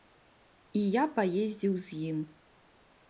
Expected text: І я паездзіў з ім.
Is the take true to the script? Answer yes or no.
yes